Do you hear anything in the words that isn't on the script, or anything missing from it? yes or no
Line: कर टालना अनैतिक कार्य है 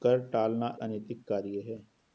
no